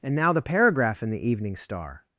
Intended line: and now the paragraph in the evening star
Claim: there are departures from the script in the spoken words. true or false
false